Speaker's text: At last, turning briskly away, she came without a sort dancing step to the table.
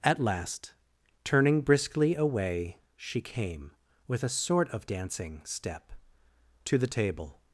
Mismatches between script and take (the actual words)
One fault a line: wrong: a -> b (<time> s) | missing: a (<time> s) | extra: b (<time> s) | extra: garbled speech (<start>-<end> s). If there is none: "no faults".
wrong: without -> with (4.1 s)
extra: of (4.7 s)